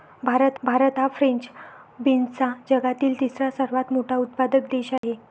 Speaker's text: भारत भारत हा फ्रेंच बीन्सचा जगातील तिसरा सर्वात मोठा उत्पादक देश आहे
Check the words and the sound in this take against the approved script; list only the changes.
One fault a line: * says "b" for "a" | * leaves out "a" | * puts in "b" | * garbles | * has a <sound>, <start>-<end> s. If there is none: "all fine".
* has a dropout, 5.0-5.0 s